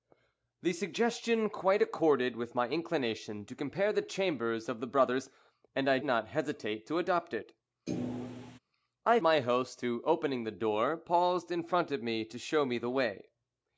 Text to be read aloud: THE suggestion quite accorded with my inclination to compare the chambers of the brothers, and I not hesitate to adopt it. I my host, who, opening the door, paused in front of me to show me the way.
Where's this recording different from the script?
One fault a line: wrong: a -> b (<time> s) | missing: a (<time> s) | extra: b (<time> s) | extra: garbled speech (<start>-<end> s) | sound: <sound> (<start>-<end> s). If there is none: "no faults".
sound: thud (7.9-8.6 s)